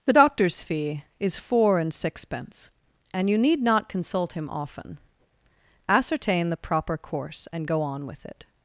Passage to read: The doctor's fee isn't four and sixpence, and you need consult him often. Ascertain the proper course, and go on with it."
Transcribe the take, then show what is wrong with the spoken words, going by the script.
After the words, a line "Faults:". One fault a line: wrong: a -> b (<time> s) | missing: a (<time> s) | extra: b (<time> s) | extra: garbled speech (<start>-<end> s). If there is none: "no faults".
The doctor's fee is four and sixpence, and you need not consult him often. Ascertain the proper course, and go on with it."
Faults:
wrong: isn't -> is (1.2 s)
extra: not (3.6 s)